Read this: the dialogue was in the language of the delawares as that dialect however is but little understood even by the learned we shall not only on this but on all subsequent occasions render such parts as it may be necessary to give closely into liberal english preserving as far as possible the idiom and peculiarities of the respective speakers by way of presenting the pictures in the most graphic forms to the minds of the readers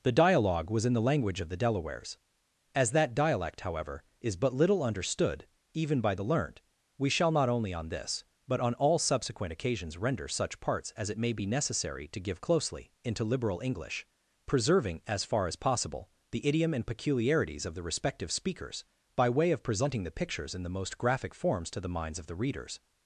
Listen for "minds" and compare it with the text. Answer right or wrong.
right